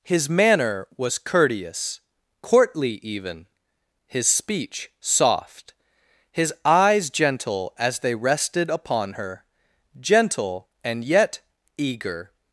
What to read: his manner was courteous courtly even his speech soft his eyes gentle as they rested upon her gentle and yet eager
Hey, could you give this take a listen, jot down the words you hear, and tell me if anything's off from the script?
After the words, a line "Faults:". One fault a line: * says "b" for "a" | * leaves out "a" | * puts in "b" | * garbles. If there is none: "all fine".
his manner was courteous courtly even his speech soft his eyes gentle as they rested upon her gentle and yet eager
Faults:
all fine